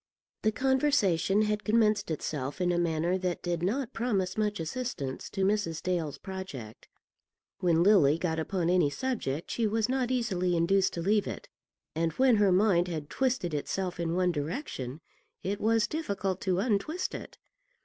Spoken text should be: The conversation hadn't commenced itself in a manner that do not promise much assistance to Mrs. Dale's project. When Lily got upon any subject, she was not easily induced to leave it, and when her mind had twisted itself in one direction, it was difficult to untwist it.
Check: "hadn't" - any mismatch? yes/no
yes